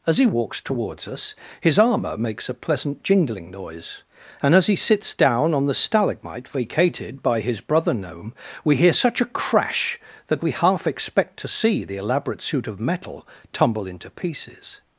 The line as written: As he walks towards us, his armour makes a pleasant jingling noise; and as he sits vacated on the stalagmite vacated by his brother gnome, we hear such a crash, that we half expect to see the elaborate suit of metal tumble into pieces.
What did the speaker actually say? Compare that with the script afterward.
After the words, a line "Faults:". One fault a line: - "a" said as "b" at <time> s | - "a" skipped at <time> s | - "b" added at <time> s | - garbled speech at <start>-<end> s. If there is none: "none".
As he walks towards us, his armour makes a pleasant jingling noise; and as he sits down on the stalagmite vacated by his brother gnome, we hear such a crash, that we half expect to see the elaborate suit of metal tumble into pieces.
Faults:
- "vacated" said as "down" at 5.1 s